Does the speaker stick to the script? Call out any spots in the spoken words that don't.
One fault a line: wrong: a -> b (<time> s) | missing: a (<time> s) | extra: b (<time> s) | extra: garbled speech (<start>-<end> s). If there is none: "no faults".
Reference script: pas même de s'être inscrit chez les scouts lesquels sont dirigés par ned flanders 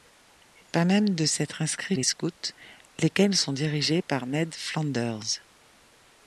missing: chez (1.9 s)